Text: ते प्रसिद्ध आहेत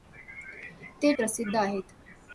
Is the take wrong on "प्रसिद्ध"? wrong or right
right